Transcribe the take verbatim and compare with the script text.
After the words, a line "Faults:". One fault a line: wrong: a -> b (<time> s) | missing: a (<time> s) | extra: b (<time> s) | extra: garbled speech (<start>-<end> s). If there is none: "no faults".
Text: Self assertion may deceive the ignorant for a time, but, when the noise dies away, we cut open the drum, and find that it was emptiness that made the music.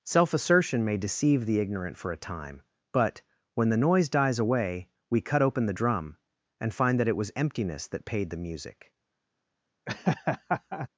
Self assertion may deceive the ignorant for a time, but, when the noise dies away, we cut open the drum, and find that it was emptiness that paid the music.
Faults:
wrong: made -> paid (8.1 s)